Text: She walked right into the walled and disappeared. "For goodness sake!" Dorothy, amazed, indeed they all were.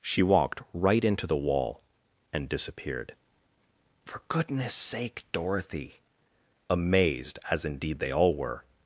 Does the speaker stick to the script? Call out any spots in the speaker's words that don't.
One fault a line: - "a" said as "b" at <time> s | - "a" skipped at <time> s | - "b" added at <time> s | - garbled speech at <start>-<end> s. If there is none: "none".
- "walled" said as "wall" at 1.4 s
- "as" added at 7.5 s